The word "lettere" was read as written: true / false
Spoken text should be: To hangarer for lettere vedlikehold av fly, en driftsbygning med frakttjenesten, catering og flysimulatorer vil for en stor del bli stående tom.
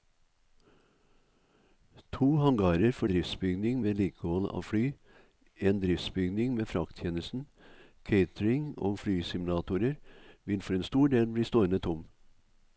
false